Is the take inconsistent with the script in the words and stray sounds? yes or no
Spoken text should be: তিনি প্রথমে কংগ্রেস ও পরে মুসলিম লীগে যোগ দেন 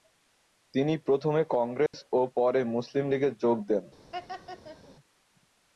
yes